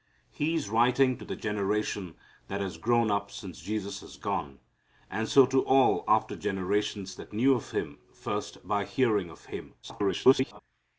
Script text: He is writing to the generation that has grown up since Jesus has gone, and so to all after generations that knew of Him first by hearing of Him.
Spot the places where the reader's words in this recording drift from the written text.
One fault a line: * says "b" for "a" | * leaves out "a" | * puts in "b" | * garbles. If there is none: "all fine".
* garbles